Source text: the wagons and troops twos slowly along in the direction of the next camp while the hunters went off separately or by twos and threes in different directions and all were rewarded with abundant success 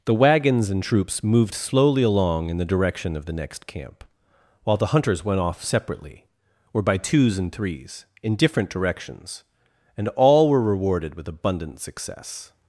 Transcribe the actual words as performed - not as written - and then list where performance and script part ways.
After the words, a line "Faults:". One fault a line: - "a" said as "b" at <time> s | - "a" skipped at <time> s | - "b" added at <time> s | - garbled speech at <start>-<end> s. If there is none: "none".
the wagons and troops moved slowly along in the direction of the next camp while the hunters went off separately or by twos and threes in different directions and all were rewarded with abundant success
Faults:
- "twos" said as "moved" at 1.2 s